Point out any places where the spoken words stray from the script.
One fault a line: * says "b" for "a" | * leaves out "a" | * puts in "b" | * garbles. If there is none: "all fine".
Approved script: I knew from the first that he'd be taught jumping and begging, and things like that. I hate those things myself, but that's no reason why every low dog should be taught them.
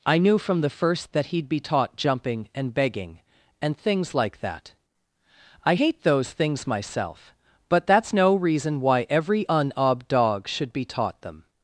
* says "unob" for "low"